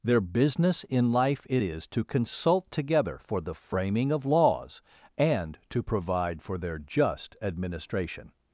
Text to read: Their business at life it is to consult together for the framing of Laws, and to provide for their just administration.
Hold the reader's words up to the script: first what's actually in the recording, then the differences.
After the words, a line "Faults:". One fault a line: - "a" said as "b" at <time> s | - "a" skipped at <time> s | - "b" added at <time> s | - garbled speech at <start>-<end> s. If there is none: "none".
Their business in life it is to consult together for the framing of Laws, and to provide for their just administration.
Faults:
- "at" said as "in" at 0.8 s